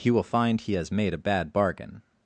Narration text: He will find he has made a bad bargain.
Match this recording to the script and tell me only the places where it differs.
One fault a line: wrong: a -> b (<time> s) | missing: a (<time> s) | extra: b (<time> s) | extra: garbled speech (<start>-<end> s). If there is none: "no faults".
no faults